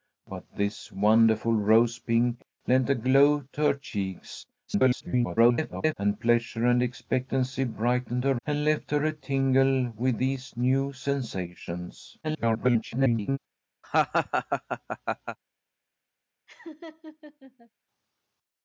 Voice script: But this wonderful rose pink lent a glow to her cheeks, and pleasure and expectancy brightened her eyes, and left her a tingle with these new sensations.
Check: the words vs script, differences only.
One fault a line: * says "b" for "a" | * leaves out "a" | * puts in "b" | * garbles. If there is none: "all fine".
* garbles
* leaves out "eyes"
* garbles